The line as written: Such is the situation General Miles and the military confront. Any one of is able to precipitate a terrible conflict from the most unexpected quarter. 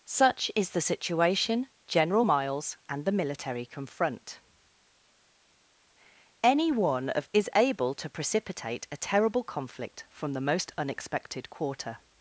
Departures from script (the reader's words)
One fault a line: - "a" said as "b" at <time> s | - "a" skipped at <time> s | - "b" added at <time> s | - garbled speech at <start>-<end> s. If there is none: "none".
none